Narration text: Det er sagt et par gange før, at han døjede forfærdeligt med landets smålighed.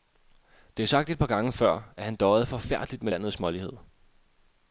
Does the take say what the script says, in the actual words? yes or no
yes